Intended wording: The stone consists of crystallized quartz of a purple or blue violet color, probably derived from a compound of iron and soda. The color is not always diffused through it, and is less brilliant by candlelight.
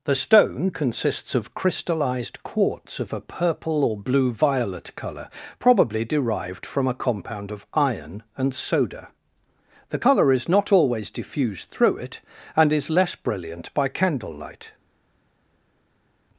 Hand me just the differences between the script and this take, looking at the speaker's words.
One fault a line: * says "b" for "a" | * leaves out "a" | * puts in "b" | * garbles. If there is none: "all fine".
all fine